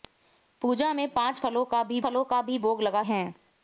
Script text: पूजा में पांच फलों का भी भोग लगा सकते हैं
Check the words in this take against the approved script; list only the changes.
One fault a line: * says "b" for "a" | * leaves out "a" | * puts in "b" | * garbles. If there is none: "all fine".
* puts in "फलों का भी"
* leaves out "सकते"